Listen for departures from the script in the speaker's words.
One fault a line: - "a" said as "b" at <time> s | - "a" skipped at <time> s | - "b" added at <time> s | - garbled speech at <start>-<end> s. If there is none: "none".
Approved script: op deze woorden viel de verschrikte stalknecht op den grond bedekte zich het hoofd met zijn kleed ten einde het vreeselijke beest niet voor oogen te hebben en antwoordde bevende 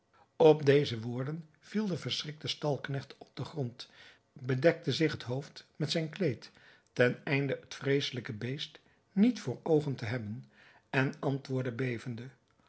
none